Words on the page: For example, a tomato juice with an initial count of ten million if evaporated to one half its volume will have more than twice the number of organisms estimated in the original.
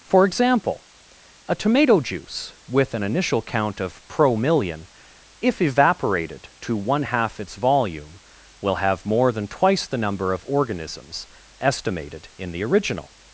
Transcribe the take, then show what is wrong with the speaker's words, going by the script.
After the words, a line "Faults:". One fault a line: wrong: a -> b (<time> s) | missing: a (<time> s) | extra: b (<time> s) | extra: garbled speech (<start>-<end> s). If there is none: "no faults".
For example, a tomato juice with an initial count of pro million if evaporated to one half its volume will have more than twice the number of organisms estimated in the original.
Faults:
wrong: ten -> pro (4.1 s)